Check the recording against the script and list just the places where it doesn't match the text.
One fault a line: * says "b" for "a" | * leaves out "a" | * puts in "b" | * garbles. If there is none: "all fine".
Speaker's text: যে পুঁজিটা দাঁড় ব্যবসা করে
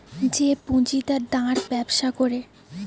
all fine